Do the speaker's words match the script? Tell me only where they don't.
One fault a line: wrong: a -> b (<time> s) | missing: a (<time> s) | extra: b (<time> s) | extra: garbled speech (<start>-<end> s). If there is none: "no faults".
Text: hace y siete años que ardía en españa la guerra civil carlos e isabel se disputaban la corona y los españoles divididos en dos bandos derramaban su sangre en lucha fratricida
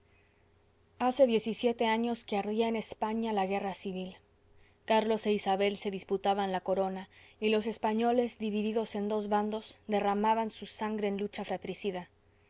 extra: diez (1.3 s)